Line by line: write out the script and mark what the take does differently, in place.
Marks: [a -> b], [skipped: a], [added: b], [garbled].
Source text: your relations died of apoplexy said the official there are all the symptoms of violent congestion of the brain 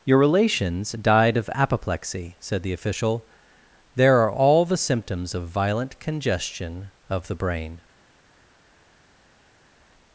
your relations died of apoplexy said the official there are all the symptoms of violent congestion of the brain